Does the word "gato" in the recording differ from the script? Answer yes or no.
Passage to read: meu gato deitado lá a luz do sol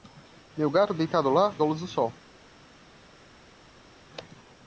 no